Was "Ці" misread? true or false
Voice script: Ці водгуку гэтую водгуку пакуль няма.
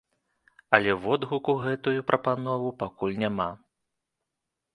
true